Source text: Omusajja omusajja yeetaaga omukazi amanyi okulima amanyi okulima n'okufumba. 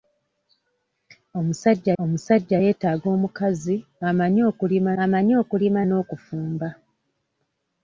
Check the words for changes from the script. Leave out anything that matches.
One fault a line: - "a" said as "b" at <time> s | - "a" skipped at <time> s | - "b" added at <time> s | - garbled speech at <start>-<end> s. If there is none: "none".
none